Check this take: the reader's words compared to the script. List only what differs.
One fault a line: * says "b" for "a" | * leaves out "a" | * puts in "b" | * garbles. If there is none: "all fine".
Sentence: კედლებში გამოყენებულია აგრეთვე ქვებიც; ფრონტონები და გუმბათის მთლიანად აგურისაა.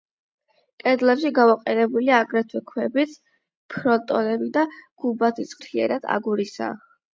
all fine